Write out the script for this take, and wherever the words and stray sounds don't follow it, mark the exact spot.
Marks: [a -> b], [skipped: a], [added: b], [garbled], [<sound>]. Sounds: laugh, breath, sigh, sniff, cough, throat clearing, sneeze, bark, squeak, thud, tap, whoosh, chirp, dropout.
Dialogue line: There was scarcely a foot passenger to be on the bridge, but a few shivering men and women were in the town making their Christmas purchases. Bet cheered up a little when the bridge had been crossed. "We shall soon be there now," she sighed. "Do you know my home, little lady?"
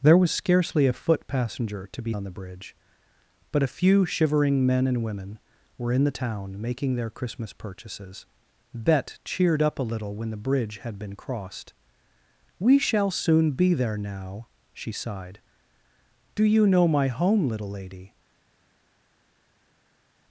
There was scarcely a foot passenger to be on the bridge, but a few shivering men and women were in the town making their Christmas purchases. Bet cheered up a little when the bridge had been crossed. "We shall soon be there now," she sighed. "Do you know my home, little lady?"